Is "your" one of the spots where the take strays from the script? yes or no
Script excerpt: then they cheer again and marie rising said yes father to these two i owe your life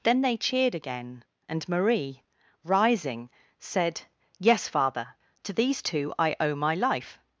yes